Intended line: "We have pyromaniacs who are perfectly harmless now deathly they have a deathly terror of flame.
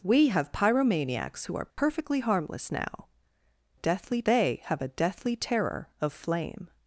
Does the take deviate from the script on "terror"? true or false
false